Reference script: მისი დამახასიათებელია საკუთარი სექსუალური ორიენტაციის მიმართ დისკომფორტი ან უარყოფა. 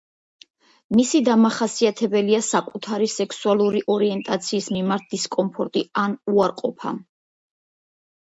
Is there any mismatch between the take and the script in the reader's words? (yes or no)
no